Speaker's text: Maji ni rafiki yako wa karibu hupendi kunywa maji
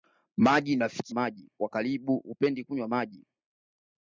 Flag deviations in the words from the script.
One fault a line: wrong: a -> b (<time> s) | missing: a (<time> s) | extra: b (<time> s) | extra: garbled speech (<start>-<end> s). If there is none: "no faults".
wrong: yako -> maji (1.1 s)